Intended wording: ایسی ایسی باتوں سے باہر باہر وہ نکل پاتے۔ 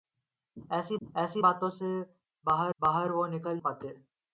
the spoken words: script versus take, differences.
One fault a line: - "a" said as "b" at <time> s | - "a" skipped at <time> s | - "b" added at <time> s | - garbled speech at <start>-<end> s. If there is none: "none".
none